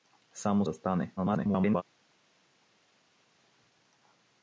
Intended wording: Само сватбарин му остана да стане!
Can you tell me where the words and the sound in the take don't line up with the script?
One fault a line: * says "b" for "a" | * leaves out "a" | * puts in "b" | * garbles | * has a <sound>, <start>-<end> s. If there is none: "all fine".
* leaves out "сватбарин му остана"
* garbles